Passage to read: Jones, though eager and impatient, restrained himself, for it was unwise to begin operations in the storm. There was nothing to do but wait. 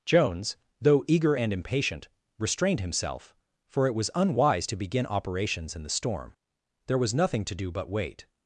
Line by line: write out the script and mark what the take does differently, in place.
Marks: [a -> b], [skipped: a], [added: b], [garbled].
Jones, though eager and impatient, restrained himself, for it was unwise to begin operations in the storm. There was nothing to do but wait.